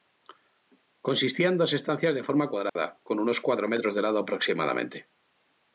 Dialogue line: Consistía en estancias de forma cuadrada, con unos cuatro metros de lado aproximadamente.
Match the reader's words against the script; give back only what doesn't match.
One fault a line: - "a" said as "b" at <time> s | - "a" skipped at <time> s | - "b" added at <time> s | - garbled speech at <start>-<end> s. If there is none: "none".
- "dos" added at 1.6 s